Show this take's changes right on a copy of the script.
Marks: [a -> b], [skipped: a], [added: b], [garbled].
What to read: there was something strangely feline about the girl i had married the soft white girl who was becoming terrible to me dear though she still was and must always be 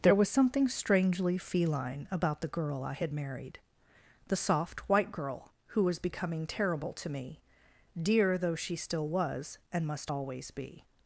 there was something strangely feline about the girl i had married the soft white girl who was becoming terrible to me dear though she still was and must always be